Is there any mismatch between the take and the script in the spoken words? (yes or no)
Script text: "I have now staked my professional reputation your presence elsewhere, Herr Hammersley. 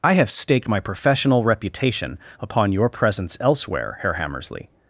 yes